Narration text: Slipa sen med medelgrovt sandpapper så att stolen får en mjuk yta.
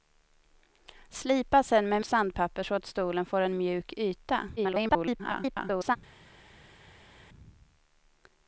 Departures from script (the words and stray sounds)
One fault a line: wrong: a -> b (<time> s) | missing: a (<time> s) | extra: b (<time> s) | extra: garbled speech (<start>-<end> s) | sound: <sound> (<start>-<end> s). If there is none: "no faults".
missing: medelgrovt (2.0 s)
extra: garbled speech (4.6-6.0 s)